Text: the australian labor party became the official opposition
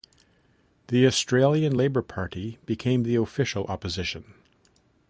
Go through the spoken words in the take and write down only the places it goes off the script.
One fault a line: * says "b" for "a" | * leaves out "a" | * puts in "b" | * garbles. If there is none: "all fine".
all fine